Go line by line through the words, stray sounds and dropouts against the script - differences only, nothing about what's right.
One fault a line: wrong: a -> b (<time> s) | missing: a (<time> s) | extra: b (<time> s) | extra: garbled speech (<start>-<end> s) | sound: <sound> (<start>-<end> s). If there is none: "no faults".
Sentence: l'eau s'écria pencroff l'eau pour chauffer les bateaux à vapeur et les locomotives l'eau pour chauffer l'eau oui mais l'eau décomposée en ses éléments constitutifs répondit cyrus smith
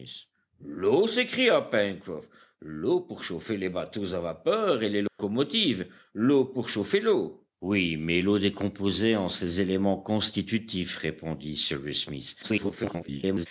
sound: dropout (5.1-5.2 s)
extra: garbled speech (12.4-13.5 s)